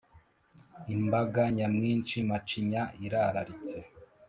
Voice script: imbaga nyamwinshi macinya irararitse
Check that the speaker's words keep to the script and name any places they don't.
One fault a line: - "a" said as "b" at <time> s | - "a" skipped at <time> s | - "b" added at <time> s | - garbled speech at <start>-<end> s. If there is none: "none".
none